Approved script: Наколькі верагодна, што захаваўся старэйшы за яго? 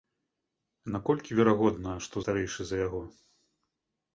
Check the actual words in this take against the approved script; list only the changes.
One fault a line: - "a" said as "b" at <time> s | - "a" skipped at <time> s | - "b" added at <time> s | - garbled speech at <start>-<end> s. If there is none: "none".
- "захаваўся" skipped at 2.1 s